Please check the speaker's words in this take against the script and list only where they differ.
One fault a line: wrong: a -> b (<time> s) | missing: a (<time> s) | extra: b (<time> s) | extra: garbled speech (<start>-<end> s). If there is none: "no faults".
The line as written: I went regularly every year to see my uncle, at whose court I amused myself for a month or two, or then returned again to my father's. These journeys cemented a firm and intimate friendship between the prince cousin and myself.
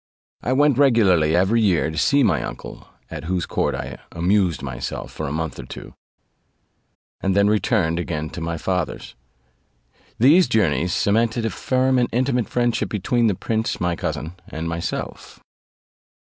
wrong: or -> and (7.2 s)
extra: my (13.8 s)